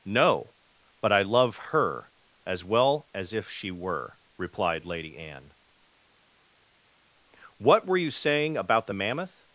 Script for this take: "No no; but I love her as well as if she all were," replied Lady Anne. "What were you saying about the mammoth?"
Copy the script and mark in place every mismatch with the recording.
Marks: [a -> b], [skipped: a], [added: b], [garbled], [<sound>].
"No [skipped: no;] but I love her as well as if she [skipped: all] were," replied Lady Anne. "What were you saying about the mammoth?"